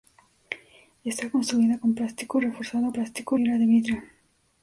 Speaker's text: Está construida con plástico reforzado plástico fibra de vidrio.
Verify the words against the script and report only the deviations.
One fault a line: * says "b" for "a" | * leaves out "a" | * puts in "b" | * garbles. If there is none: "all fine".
all fine